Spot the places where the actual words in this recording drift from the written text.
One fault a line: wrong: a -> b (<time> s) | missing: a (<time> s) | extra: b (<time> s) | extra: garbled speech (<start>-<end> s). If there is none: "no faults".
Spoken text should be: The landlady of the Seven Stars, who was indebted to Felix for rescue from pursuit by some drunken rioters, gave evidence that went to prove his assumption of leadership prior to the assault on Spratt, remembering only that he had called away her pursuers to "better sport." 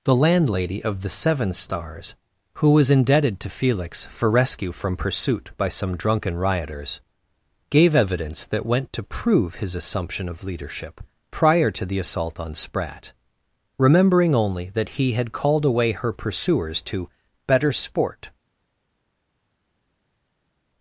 no faults